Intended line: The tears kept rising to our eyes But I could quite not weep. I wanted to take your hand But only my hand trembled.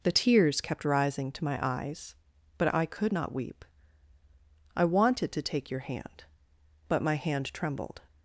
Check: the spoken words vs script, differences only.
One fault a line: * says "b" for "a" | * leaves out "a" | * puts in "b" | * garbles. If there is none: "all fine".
* says "my" for "our"
* leaves out "quite"
* leaves out "only"